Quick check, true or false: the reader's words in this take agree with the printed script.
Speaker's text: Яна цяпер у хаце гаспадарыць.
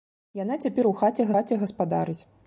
false